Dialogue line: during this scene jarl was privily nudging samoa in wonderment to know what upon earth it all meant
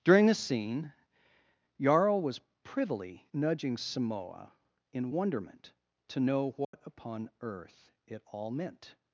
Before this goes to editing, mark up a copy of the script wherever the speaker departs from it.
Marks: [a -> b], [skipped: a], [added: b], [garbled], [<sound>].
during this scene jarl was privily nudging samoa in wonderment to know what [dropout] upon earth it all meant